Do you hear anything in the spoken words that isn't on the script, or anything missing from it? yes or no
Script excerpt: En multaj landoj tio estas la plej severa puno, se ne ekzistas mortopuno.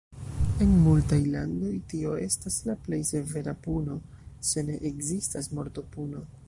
no